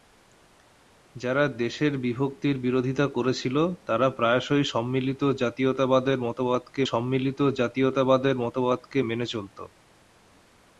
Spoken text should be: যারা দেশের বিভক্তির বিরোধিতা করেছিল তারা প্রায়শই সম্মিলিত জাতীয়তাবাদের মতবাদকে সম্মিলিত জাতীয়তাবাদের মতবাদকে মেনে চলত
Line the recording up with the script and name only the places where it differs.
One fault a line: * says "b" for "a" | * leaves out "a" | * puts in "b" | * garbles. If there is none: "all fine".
all fine